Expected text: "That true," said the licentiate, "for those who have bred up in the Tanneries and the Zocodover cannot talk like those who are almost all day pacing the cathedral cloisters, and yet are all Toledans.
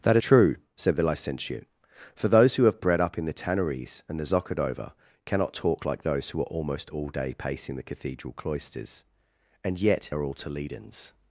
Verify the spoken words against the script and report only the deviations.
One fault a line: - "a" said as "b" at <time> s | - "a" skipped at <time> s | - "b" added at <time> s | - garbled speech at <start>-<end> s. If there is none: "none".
none